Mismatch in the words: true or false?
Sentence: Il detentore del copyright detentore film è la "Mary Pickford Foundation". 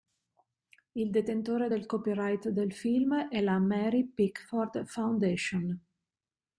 true